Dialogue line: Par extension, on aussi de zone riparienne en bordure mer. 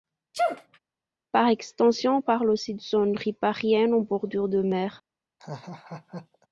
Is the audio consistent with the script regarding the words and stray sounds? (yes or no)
no